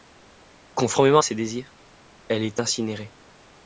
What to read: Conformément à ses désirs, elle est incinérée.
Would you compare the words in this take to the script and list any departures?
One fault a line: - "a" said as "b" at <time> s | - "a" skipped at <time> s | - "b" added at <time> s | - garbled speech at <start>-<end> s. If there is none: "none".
none